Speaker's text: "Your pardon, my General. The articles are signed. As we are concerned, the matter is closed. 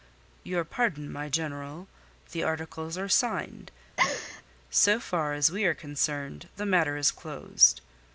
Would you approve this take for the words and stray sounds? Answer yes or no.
no